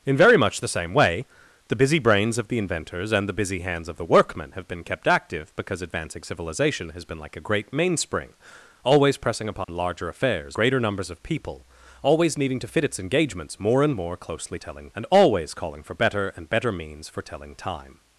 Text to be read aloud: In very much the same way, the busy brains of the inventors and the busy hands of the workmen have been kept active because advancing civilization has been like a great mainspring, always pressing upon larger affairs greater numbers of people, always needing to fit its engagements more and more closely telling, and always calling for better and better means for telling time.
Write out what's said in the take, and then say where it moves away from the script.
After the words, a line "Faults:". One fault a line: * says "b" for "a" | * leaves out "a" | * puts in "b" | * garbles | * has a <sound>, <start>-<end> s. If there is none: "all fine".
In very much the same way, the busy brains of the inventors and the busy hands of the workmen have been kept active because advancing civilization has been like a great mainspring, always pressing upon larger affairs greater numbers of people, always needing to fit its engagements more and more closely telling, and always calling for better and better means for telling time.
Faults:
* has a dropout, 9.6-9.7 s